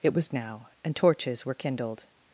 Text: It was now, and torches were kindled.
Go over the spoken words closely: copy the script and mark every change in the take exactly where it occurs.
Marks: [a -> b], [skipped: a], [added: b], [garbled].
It was now, and torches were kindled.